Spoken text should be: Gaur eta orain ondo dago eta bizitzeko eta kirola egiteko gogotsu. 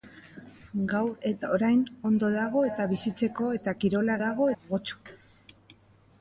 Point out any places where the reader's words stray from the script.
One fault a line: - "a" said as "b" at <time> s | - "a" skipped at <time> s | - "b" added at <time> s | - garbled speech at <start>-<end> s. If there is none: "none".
- "egiteko" said as "dago" at 4.2 s